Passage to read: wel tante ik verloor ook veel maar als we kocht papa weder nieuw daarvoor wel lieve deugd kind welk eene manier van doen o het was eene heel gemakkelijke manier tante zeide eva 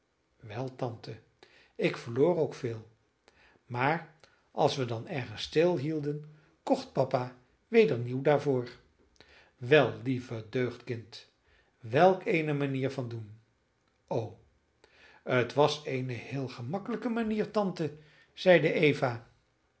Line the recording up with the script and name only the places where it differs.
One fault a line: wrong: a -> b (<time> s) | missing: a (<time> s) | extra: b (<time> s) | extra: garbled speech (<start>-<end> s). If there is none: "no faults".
extra: dan ergens stilhielden (4.9 s)